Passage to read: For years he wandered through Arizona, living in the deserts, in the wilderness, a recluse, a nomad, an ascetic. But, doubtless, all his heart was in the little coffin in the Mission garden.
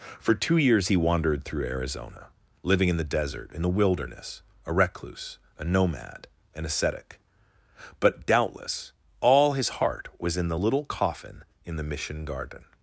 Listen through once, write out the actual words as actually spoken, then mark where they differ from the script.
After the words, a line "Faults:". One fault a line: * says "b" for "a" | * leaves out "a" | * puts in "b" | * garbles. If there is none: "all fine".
For two years he wandered through Arizona, living in the desert, in the wilderness, a recluse, a nomad, an ascetic. But, doubtless, all his heart was in the little coffin in the Mission garden.
Faults:
* puts in "two"
* says "desert" for "deserts"